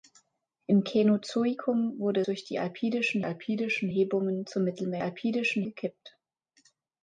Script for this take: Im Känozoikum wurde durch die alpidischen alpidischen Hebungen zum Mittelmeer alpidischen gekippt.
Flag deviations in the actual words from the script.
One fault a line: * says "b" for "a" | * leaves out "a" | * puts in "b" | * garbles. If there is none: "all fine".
all fine